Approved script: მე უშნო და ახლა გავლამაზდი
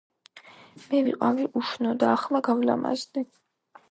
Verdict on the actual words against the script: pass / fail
fail